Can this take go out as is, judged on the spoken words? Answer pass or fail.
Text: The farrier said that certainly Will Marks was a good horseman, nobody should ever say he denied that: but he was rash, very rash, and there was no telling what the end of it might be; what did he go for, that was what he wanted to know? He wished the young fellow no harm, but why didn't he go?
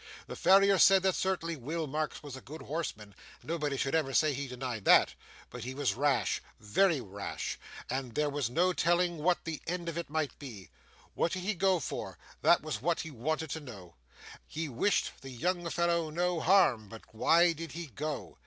fail